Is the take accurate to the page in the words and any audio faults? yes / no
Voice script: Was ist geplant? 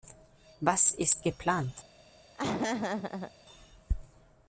no